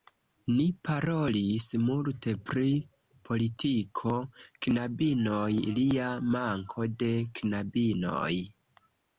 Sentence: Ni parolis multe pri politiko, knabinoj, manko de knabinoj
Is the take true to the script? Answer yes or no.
no